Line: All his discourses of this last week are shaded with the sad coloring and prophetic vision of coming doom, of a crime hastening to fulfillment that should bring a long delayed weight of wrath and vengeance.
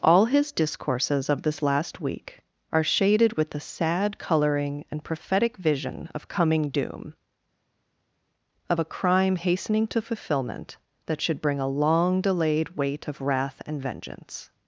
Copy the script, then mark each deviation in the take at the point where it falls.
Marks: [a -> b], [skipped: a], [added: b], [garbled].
All his discourses of this last week are shaded with the sad coloring and prophetic vision of coming doom, of a crime hastening to fulfillment that should bring a long delayed weight of wrath and vengeance.